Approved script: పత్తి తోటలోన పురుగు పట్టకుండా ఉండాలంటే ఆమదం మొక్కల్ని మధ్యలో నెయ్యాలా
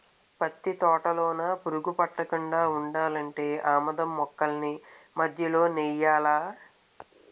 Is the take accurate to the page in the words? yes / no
yes